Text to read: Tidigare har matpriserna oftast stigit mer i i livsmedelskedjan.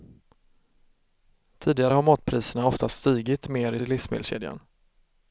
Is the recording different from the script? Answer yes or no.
no